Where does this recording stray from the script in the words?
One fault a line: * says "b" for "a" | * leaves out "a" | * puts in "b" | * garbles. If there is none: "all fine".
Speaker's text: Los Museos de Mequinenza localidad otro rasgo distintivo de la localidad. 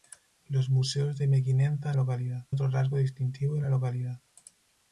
all fine